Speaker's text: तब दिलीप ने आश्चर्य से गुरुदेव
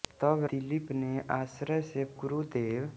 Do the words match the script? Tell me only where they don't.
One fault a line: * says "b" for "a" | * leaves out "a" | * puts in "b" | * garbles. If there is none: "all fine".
all fine